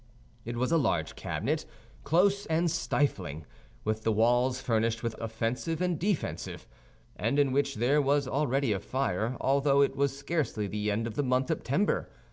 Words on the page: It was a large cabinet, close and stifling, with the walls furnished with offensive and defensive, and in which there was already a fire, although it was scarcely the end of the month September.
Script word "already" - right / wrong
right